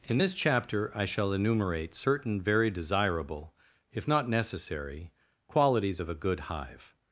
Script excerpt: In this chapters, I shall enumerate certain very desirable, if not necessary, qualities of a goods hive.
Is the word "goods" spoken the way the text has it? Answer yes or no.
no